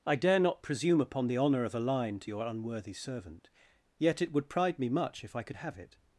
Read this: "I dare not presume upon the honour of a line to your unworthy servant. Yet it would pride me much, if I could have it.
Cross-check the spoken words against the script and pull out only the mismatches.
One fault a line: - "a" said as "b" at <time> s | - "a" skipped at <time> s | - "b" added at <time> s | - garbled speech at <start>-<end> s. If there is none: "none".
none